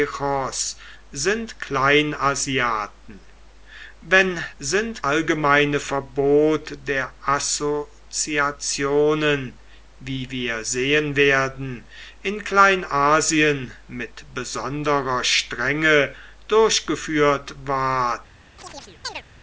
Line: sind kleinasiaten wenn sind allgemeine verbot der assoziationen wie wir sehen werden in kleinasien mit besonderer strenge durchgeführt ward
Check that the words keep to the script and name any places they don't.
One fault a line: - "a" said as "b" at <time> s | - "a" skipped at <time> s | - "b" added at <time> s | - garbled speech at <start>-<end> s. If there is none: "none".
none